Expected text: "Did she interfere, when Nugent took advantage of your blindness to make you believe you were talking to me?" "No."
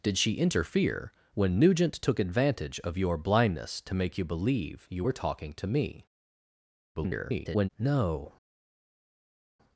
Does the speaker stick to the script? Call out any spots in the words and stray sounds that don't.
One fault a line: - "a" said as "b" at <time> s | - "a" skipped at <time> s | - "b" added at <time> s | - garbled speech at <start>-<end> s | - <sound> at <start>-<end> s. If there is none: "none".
- garbled speech at 6.9-7.7 s